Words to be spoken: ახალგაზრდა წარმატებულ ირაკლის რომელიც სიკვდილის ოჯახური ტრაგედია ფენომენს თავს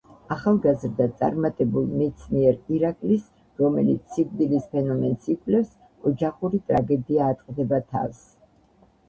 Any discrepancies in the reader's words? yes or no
yes